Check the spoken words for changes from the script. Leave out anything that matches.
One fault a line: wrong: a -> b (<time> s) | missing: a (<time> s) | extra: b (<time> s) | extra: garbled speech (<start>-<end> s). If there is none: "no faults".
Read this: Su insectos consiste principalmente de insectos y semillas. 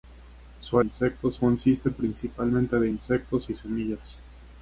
no faults